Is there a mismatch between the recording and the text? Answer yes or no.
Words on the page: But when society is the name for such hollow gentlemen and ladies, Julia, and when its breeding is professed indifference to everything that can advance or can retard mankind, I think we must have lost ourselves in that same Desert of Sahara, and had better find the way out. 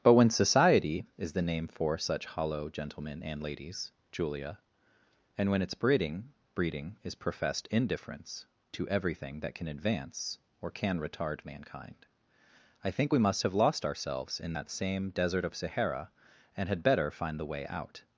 yes